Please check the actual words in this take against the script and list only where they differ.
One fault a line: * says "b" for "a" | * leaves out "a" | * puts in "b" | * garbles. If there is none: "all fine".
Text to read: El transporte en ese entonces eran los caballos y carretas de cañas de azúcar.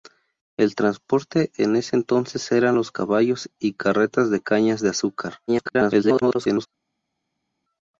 * garbles